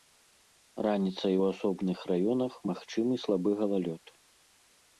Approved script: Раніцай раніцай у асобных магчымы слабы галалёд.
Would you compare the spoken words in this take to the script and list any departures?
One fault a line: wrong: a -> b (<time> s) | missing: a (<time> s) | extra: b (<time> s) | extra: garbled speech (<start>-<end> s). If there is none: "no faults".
missing: раніцай (1.4 s)
extra: раёнах (2.1 s)